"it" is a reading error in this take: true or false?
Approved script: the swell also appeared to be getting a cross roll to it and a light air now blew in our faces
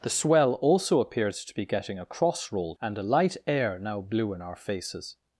true